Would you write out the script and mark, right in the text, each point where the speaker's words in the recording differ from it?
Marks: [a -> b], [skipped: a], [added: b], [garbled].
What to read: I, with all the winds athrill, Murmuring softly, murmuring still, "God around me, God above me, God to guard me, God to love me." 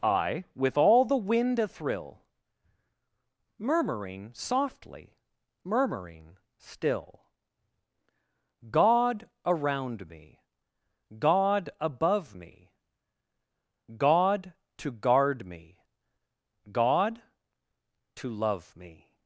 I, with all the [winds -> wind] athrill, Murmuring softly, murmuring still, "God around me, God above me, God to guard me, God to love me."